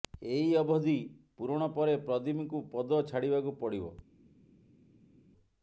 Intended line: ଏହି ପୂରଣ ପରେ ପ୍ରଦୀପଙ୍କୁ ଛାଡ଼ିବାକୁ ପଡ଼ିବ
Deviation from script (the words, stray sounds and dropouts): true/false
true